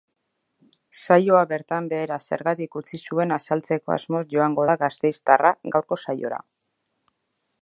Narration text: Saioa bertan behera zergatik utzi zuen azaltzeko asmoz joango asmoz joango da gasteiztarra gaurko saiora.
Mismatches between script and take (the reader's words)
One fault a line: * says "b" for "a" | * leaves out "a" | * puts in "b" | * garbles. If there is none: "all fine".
* leaves out "asmoz joango"